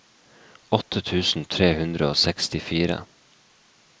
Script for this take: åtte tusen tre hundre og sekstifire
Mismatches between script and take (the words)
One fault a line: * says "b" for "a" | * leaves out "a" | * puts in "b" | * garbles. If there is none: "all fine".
all fine